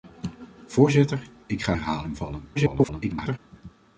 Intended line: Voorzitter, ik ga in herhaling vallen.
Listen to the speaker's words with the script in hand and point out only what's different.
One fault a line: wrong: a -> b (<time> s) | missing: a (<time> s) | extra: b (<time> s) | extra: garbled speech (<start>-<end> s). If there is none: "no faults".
missing: in (1.8 s)
extra: garbled speech (2.5-3.4 s)